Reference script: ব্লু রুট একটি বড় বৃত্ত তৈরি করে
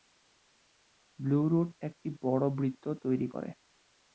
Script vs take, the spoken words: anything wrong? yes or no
no